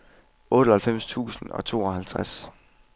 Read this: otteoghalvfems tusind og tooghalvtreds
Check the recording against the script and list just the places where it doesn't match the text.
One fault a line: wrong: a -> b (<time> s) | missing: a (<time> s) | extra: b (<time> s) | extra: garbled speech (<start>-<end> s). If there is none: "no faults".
no faults